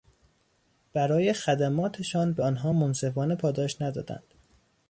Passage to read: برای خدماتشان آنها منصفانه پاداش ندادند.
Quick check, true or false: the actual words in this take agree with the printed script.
false